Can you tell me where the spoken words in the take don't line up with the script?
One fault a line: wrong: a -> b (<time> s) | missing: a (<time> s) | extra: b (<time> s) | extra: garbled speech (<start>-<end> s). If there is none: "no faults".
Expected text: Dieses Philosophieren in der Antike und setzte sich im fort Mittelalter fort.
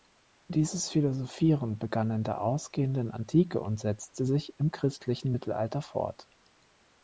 extra: begann (1.8 s)
extra: ausgehenden (2.4 s)
wrong: fort -> christlichen (4.7 s)